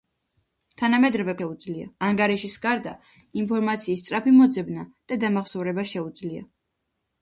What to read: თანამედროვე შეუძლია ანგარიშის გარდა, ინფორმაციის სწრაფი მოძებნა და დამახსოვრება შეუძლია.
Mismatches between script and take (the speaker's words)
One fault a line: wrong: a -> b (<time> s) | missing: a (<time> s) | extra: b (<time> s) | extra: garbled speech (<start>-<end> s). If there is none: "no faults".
no faults